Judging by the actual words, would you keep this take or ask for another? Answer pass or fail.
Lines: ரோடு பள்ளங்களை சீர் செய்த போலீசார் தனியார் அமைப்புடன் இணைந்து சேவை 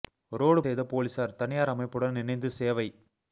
fail